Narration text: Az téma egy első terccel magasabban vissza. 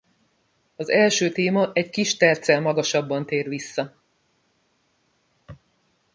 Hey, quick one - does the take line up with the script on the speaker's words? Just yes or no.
no